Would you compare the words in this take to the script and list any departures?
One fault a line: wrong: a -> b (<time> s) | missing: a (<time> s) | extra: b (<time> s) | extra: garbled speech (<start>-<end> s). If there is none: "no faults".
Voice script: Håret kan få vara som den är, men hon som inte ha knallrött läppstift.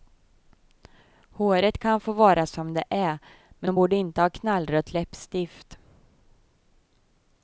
wrong: den -> det (2.7 s)
wrong: som -> borde (3.7 s)